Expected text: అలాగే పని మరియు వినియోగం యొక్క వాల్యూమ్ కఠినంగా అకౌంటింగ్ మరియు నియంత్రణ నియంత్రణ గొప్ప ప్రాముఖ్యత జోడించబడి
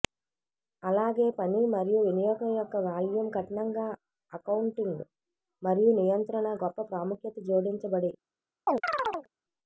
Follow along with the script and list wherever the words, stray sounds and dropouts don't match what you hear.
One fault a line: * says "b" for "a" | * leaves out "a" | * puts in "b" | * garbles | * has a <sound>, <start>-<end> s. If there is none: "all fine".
* leaves out "నియంత్రణ"
* has a chirp, 8.7-9.3 s